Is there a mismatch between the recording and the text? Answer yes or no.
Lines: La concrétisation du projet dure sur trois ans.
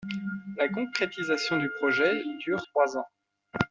yes